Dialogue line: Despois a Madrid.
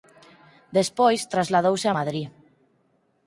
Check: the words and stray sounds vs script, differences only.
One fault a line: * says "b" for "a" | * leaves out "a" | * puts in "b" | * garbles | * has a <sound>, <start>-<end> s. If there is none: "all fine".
* puts in "trasladouse"